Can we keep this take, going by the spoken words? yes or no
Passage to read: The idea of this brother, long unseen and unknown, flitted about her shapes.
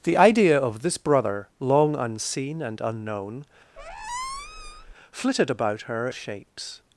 yes